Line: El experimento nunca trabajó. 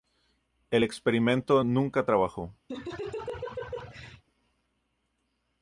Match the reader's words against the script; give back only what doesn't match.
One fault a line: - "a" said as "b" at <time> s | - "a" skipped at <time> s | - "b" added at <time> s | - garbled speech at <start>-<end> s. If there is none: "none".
none